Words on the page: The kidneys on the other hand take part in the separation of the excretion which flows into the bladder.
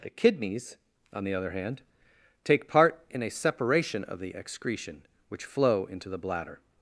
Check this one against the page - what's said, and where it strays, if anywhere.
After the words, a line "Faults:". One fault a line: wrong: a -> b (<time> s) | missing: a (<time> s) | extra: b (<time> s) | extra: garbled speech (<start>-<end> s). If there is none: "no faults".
The kidneys on the other hand take part in a separation of the excretion which flow into the bladder.
Faults:
wrong: the -> a (3.2 s)
wrong: flows -> flow (5.4 s)